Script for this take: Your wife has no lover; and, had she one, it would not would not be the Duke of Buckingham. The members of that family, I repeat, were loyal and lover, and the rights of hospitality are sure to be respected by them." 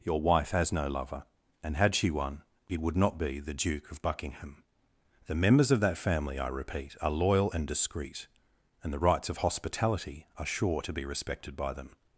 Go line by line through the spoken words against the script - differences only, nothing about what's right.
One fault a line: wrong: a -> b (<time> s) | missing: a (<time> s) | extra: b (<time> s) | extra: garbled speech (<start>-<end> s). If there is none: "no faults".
missing: would not (3.2 s)
wrong: were -> are (7.0 s)
wrong: lover -> discreet (7.7 s)